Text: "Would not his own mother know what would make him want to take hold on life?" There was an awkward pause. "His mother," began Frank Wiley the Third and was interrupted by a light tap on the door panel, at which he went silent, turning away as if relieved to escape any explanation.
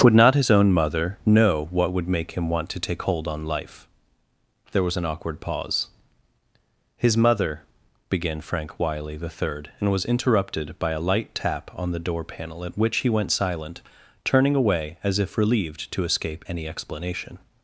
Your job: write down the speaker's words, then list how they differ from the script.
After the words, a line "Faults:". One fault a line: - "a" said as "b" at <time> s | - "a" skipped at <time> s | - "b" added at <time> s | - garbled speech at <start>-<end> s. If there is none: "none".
"Would not his own mother know what would make him want to take hold on life?" There was an awkward pause. "His mother," began Frank Wiley the Third and was interrupted by a light tap on the door panel, at which he went silent, turning away as if relieved to escape any explanation.
Faults:
none